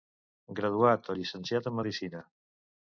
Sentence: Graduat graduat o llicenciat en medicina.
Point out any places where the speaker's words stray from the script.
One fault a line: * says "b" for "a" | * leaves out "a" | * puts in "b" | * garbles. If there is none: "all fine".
* leaves out "graduat"